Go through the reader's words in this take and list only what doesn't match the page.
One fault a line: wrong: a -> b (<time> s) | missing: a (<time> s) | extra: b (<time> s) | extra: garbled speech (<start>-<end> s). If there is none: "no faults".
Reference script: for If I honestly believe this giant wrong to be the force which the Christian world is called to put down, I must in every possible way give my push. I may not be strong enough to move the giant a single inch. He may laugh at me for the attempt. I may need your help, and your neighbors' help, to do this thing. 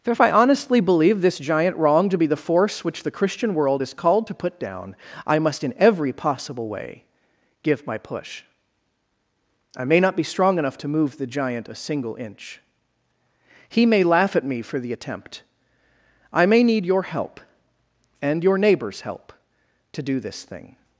no faults